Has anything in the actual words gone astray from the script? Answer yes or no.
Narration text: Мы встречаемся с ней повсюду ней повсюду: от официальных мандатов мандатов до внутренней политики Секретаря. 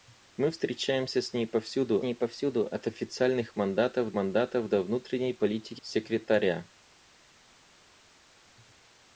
no